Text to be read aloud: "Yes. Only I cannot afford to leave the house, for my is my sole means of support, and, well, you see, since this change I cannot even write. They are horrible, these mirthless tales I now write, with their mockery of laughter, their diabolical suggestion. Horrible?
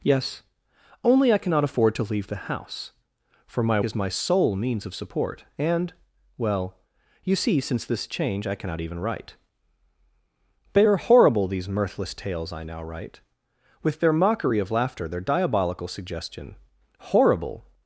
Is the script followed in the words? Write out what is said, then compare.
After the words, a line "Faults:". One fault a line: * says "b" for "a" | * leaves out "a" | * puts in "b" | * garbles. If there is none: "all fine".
"Yes. Only I cannot afford to leave the house, for my is my sole means of support, and, well, you see, since this change I cannot even write. They are horrible, these mirthless tales I now write, with their mockery of laughter, their diabolical suggestion. Horrible?
Faults:
all fine